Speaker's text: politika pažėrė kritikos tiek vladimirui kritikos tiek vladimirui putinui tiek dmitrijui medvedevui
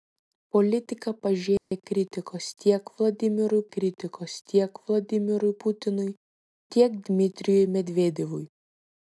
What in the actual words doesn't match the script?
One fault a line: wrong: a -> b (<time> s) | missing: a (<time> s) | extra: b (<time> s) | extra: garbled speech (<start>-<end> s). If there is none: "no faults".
no faults